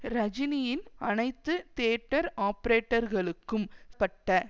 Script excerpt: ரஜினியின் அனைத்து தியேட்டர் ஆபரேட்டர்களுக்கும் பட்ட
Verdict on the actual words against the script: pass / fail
pass